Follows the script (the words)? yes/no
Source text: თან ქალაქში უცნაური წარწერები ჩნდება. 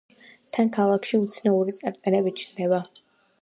yes